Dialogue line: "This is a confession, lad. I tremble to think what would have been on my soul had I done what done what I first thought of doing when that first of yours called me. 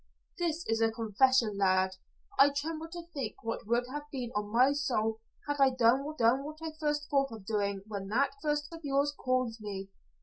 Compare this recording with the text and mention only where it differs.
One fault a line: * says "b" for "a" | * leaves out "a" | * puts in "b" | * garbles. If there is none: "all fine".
all fine